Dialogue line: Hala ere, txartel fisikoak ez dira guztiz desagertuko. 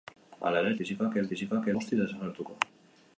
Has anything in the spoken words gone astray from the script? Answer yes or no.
yes